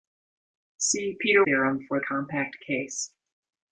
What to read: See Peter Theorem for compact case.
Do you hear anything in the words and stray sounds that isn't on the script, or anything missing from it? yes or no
no